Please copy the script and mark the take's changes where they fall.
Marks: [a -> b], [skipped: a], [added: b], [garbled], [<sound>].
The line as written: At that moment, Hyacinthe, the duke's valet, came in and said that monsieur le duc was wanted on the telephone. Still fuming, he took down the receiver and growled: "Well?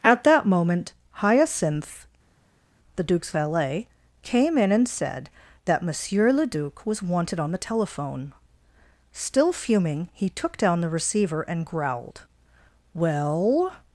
At that moment, Hyacinthe, the duke's valet, came in and said that monsieur le duc was wanted on the telephone. Still fuming, he took down the receiver and growled: "Well?